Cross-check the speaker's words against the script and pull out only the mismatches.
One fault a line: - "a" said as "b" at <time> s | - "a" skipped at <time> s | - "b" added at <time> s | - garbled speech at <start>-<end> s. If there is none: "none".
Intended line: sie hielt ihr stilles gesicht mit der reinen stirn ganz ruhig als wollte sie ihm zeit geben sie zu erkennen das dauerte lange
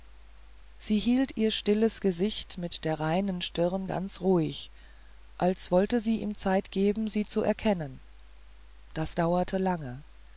none